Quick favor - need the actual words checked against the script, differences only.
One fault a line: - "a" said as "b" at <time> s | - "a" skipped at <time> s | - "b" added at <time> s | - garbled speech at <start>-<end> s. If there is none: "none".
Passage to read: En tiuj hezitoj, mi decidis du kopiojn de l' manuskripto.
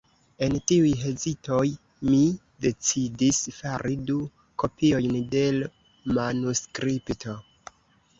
- "fari" added at 3.6 s